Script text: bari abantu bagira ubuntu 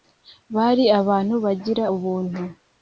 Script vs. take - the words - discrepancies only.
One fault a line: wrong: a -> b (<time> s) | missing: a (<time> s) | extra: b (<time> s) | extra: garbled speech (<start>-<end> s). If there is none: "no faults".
no faults